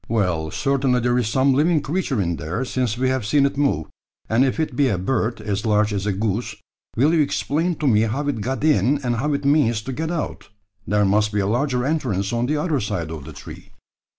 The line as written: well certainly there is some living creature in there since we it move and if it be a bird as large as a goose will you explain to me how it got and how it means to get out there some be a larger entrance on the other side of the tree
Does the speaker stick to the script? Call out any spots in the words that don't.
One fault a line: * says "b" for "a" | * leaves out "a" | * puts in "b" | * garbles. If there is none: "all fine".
* puts in "have seen"
* puts in "in"
* says "must" for "some"